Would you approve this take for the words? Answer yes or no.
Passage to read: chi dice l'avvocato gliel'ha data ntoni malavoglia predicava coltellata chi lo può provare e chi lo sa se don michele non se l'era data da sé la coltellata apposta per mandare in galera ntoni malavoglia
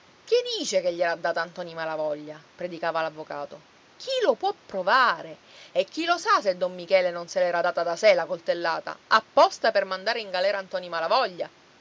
no